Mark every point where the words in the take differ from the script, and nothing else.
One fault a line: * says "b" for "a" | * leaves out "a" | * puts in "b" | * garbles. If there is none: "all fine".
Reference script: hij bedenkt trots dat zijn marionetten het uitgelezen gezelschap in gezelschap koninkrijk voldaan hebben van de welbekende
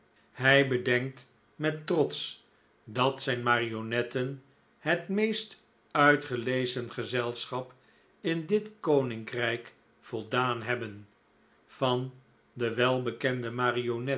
* puts in "met"
* puts in "meest"
* says "dit" for "gezelschap"